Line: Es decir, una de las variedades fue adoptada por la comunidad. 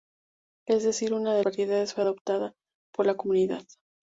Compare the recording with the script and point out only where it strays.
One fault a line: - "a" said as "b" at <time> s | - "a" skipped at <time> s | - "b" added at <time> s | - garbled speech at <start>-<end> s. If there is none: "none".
- "las" skipped at 1.4 s